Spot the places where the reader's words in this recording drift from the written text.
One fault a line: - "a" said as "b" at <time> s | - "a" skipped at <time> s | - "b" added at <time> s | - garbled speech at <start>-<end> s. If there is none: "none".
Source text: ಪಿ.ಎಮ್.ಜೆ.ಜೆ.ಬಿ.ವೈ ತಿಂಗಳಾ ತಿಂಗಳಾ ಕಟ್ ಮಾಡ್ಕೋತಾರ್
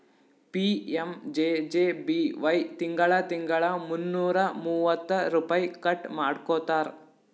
- "ಮುನ್ನೂರಾ ಮೂವತ್ತ ರುಪೈ" added at 3.9 s